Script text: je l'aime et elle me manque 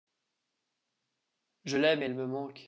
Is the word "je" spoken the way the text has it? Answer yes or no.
yes